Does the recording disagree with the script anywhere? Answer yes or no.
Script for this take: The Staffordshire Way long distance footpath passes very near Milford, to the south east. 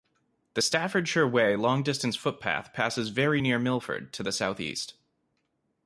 no